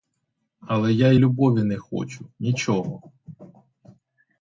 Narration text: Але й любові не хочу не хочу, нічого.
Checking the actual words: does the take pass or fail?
fail